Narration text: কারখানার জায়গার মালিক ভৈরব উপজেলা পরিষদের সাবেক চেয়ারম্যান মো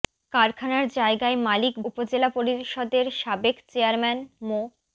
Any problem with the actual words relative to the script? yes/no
yes